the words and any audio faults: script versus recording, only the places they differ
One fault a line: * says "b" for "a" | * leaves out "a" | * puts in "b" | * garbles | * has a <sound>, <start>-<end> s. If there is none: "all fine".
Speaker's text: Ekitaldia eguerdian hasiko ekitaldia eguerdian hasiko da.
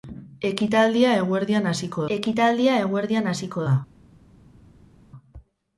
all fine